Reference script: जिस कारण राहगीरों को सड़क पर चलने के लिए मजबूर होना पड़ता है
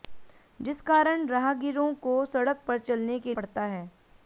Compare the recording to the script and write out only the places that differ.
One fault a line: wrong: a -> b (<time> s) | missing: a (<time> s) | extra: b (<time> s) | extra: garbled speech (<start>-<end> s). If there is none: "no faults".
missing: लिए मजबूर होना (3.3 s)